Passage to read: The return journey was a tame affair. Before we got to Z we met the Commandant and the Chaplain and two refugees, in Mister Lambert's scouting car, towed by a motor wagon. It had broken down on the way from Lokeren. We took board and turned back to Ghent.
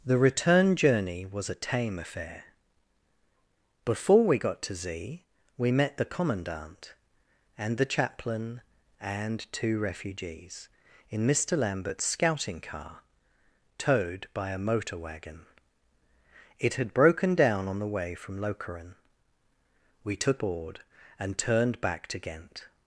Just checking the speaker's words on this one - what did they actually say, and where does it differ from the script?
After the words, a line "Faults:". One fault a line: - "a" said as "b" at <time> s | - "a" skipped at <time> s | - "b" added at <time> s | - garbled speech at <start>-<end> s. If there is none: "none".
The return journey was a tame affair. Before we got to Z we met the Commandant and the Chaplain and two refugees, in Mister Lambert's scouting car, towed by a motor wagon. It had broken down on the way from Lokeren. We took board and turned back to Ghent.
Faults:
none